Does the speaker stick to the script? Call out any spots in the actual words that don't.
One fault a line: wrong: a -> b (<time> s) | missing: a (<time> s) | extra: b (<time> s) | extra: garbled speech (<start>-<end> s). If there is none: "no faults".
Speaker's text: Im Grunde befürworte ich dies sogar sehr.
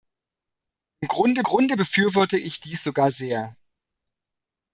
extra: Grunde (1.4 s)